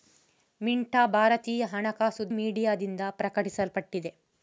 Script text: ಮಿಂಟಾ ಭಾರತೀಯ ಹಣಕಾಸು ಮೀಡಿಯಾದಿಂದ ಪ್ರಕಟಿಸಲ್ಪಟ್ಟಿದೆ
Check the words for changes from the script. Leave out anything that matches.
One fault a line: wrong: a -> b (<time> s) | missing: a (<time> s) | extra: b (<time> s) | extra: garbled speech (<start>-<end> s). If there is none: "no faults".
no faults